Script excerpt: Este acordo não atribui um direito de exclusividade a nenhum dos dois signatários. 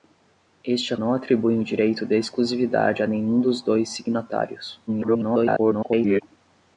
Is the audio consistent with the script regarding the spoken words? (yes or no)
no